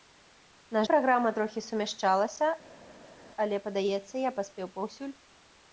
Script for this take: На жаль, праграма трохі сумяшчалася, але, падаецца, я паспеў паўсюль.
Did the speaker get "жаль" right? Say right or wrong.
wrong